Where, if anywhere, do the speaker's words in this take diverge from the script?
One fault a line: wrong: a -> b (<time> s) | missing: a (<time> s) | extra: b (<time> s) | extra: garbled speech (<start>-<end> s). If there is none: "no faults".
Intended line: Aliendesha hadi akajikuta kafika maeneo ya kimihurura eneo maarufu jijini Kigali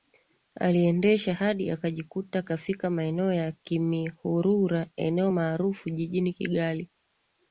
no faults